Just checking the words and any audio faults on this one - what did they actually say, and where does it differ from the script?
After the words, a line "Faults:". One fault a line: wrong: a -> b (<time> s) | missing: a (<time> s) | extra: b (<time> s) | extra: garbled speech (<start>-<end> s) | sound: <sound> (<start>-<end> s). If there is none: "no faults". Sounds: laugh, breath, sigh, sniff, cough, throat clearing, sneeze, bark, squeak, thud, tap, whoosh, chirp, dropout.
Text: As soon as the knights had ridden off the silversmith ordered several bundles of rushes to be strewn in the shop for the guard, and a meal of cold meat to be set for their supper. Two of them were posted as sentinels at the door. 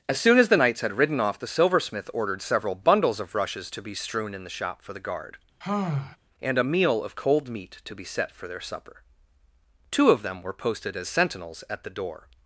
As soon as the knights had ridden off the silversmith ordered several bundles of rushes to be strewn in the shop for the guard, and a meal of cold meat to be set for their supper. Two of them were posted as sentinels at the door.
Faults:
sound: sigh (5.6-6.2 s)